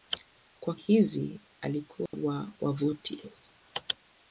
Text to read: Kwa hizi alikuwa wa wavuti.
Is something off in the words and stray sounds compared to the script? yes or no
yes